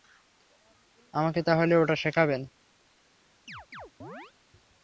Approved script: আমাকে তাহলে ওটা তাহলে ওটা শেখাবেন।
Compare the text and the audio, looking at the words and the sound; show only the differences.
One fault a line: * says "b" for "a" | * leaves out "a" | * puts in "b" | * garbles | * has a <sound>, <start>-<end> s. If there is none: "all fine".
* leaves out "তাহলে ওটা"
* has a chirp, 3.5-4.3 s